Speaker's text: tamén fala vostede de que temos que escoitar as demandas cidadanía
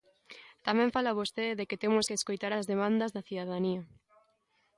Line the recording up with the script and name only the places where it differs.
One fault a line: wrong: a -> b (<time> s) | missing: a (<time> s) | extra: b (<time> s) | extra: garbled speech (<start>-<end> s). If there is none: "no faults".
extra: da (3.2 s)